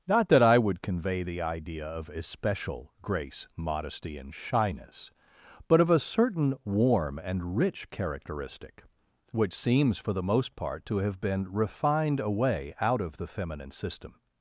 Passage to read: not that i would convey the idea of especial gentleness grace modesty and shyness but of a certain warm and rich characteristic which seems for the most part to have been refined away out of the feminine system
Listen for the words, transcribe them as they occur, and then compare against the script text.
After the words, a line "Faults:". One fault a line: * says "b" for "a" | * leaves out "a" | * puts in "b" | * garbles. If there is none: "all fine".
not that i would convey the idea of especial grace modesty and shyness but of a certain warm and rich characteristic which seems for the most part to have been refined away out of the feminine system
Faults:
* leaves out "gentleness"